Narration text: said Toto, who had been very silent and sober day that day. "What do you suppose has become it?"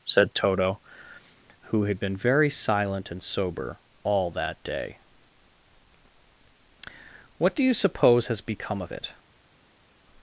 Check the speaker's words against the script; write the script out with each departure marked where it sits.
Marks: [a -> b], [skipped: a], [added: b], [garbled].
said Toto, who had been very silent and sober [day -> all] that day. "What do you suppose has become [added: of] it?"